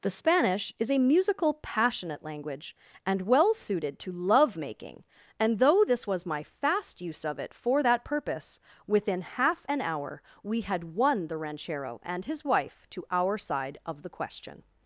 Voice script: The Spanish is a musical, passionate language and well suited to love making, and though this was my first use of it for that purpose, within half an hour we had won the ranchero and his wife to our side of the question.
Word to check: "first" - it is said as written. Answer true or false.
false